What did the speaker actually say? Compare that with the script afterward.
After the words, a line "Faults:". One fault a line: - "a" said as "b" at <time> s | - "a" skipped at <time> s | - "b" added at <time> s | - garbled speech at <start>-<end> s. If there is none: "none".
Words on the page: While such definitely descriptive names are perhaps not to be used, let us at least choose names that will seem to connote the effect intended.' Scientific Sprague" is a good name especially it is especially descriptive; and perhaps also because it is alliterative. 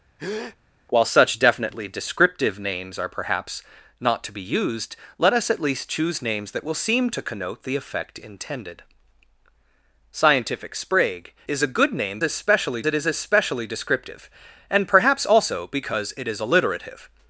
While such definitely descriptive names are perhaps not to be used, let us at least choose names that will seem to connote the effect intended.' Scientific Sprague" is a good name especially it is especially descriptive; and perhaps also because it is alliterative.
Faults:
none